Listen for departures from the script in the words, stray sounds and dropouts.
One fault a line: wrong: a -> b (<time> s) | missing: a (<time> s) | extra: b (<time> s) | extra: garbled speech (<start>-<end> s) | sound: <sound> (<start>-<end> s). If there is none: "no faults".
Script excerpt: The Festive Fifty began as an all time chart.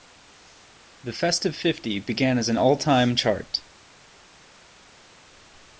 no faults